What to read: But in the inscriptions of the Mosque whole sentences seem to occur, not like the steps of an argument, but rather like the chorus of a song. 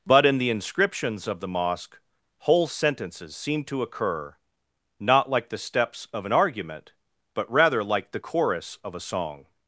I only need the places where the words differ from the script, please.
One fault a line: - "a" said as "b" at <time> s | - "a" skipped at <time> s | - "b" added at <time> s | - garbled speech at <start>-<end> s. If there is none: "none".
none